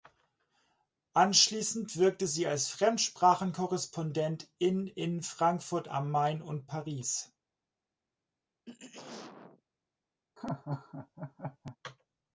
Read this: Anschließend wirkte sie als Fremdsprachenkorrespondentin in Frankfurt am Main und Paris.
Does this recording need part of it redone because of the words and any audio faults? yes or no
yes